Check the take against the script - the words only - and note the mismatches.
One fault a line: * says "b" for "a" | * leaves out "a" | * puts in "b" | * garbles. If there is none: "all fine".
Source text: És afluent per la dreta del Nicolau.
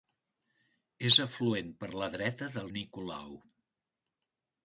all fine